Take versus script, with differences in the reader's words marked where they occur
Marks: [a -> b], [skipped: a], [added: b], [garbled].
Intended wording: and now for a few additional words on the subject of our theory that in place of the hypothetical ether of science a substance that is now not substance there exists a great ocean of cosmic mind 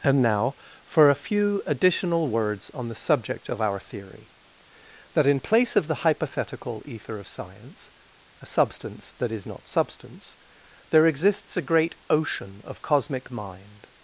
and now for a few additional words on the subject of our theory that in place of the hypothetical ether of science a substance that is [skipped: now] not substance there exists a great ocean of cosmic mind